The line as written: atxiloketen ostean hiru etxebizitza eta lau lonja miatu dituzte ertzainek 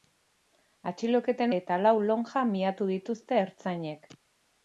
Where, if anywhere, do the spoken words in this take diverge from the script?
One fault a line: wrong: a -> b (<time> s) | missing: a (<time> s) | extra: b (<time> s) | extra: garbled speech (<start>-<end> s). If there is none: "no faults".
missing: ostean hiru etxebizitza (1.5 s)